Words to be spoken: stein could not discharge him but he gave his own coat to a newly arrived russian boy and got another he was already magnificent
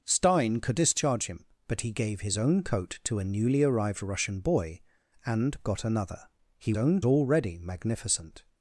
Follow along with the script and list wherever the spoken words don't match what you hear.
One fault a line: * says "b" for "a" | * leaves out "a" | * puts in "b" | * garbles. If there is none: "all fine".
* leaves out "not"
* says "own" for "was"